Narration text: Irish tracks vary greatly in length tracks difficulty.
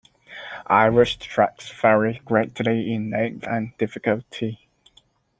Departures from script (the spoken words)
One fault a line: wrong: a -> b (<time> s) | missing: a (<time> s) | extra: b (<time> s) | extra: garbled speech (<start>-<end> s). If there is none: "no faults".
wrong: tracks -> and (3.5 s)